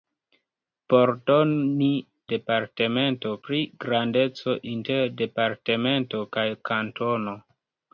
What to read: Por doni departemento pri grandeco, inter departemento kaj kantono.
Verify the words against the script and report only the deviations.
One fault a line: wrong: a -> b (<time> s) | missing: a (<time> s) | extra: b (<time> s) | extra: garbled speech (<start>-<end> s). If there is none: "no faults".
no faults